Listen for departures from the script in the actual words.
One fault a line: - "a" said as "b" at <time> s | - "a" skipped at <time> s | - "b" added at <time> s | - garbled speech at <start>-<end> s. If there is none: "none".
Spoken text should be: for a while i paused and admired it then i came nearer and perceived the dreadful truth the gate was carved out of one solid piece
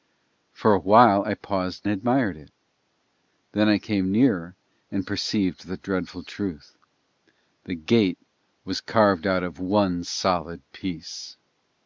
- "and" skipped at 1.9 s